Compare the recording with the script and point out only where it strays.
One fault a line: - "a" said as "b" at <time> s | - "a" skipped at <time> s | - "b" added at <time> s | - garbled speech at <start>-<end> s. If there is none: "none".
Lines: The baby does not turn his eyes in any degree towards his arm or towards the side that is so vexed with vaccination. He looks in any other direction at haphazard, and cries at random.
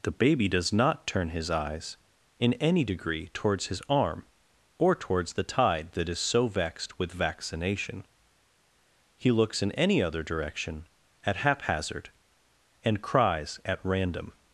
- "side" said as "tide" at 5.4 s